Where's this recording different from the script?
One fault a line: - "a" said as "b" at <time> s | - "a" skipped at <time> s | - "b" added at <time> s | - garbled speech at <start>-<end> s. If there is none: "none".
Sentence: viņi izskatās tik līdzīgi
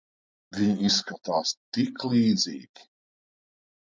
none